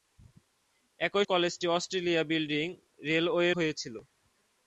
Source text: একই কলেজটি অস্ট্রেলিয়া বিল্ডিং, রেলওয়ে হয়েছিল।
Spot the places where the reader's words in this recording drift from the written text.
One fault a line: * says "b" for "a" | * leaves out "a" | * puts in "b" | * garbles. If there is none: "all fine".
all fine